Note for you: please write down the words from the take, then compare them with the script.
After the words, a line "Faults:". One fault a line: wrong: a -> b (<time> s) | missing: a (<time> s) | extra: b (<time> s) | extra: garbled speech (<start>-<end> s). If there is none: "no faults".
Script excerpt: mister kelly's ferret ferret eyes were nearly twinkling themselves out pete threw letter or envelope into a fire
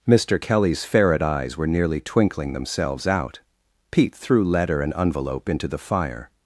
mister kelly's ferret eyes were nearly twinkling themselves out pete threw letter and envelope into the fire
Faults:
missing: ferret (1.2 s)
wrong: or -> and (4.8 s)
wrong: a -> the (5.7 s)